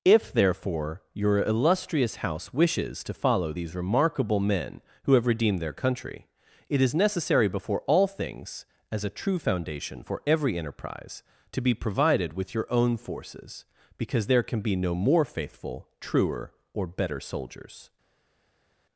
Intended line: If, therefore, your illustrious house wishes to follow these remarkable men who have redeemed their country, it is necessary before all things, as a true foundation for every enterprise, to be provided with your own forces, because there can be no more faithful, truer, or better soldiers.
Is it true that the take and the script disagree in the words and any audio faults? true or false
false